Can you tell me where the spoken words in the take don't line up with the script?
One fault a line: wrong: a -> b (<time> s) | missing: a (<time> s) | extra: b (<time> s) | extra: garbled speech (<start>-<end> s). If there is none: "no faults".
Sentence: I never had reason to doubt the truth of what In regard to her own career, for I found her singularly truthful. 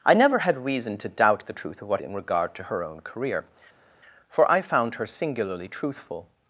no faults